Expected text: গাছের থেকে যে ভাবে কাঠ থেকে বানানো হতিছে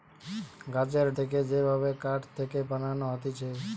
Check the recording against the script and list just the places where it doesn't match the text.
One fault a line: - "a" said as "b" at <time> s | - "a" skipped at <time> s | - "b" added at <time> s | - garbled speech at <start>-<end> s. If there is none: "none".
none